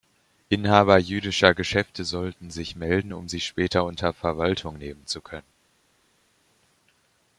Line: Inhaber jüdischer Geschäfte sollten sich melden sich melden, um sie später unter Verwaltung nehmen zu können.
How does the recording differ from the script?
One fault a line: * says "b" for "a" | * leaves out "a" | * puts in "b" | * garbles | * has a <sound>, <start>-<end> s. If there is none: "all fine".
* leaves out "sich melden"